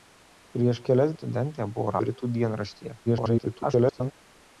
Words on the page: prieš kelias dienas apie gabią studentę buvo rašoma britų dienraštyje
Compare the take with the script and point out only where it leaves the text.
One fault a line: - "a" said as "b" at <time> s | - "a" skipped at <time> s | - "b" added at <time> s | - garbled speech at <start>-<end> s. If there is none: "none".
- "dienas apie gabią" skipped at 1.1 s
- "rašoma" skipped at 2.0 s
- garbled speech at 3.1-4.1 s